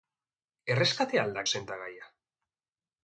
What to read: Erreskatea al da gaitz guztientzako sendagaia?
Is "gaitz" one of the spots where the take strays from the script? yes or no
yes